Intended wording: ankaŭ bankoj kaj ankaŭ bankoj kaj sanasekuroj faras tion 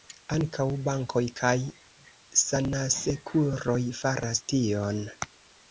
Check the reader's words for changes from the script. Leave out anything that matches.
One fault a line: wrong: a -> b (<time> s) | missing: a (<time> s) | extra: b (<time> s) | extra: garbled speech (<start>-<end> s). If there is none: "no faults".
missing: ankaŭ bankoj kaj (1.5 s)